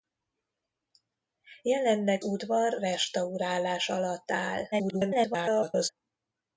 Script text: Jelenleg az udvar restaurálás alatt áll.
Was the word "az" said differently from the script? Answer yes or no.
yes